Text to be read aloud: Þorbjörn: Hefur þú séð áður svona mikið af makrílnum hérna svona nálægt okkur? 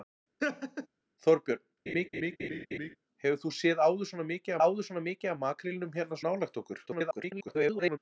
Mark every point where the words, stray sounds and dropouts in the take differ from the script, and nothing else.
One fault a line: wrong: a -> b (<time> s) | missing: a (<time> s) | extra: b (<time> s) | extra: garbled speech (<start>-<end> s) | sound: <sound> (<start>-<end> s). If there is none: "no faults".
sound: laugh (0.4-0.9 s)
sound: laugh (1.9-3.0 s)
extra: áður svona mikið (4.6 s)
missing: svona (6.2 s)
extra: garbled speech (6.9-8.0 s)